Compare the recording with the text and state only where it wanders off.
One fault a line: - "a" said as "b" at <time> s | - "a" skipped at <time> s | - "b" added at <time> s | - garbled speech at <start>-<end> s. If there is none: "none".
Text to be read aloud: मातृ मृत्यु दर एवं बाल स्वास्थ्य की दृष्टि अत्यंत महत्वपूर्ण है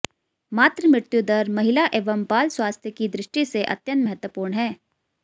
- "महिला" added at 1.6 s
- "से" added at 3.4 s